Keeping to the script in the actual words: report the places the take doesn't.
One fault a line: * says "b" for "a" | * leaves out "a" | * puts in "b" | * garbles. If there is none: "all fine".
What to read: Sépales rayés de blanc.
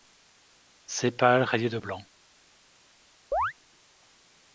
all fine